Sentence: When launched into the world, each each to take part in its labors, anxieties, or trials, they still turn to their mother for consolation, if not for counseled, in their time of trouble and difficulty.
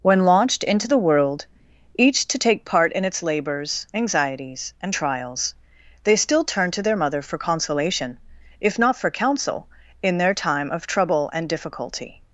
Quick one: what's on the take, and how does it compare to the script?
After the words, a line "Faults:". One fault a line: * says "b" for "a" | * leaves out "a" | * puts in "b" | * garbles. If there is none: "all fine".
When launched into the world, each to take part in its labors, anxieties, and trials, they still turn to their mother for consolation, if not for counsel, in their time of trouble and difficulty.
Faults:
* leaves out "each"
* says "and" for "or"
* says "counsel" for "counseled"